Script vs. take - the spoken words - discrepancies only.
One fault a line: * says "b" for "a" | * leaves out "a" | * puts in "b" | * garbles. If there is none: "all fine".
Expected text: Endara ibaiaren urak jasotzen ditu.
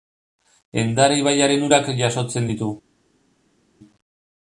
all fine